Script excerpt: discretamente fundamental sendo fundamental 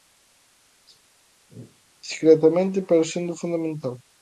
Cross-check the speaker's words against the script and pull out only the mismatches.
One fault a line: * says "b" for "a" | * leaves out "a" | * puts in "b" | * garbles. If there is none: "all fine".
* says "pero" for "fundamental"